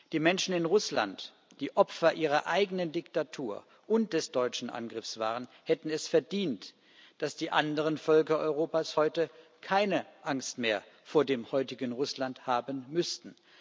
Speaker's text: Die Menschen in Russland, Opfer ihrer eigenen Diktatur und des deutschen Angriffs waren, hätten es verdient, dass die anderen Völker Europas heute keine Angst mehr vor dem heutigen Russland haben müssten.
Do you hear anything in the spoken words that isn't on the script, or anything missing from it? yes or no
yes